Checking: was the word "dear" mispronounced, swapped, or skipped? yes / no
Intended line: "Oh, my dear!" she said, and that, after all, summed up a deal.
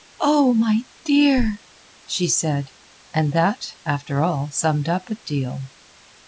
no